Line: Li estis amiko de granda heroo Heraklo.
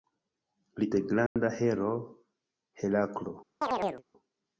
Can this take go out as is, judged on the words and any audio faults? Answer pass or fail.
fail